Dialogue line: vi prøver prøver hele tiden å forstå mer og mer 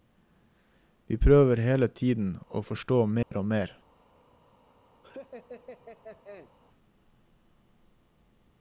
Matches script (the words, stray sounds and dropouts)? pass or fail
fail